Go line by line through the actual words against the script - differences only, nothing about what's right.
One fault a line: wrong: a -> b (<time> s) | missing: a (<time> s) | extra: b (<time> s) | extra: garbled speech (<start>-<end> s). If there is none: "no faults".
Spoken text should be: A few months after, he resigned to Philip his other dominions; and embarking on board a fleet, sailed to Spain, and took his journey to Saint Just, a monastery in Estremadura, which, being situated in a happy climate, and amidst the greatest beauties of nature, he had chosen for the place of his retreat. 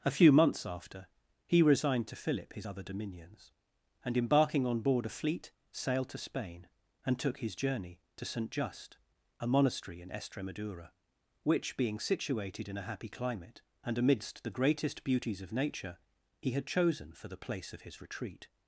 no faults